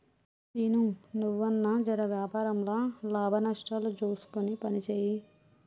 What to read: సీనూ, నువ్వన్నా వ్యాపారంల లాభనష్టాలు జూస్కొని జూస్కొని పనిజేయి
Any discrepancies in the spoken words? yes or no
yes